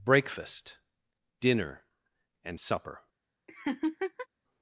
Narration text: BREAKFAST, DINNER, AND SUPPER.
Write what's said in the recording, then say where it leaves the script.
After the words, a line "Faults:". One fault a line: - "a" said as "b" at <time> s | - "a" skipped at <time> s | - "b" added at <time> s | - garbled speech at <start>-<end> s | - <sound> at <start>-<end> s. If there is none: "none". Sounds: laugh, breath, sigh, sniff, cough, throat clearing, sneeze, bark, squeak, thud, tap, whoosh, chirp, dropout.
BREAKFAST, DINNER, AND SUPPER.
Faults:
- laugh at 3.5-4.3 s